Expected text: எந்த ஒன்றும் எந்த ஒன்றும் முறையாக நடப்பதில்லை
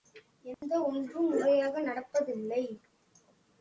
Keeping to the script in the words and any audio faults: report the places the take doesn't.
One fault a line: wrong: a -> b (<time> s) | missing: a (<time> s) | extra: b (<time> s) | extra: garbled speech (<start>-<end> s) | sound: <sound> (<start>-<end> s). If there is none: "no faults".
sound: dropout (0.5-0.6 s)
missing: எந்த ஒன்றும் (1.3 s)